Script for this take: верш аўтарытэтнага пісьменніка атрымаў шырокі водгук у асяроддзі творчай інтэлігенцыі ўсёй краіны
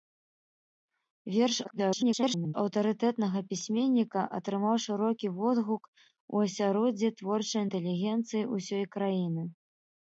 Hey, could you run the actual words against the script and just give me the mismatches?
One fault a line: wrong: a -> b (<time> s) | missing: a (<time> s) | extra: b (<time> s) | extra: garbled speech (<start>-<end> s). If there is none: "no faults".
extra: garbled speech (1.6-2.5 s)